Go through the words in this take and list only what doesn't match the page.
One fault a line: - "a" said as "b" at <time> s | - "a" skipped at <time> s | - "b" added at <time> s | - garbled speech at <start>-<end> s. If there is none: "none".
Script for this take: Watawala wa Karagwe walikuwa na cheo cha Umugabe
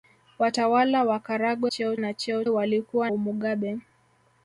- "walikuwa" said as "cheo" at 1.6 s
- "cha" said as "walikuwa" at 2.5 s